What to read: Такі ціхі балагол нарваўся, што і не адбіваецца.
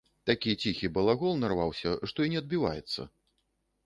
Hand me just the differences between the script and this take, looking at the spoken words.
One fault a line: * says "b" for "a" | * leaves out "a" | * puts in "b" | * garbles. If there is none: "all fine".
all fine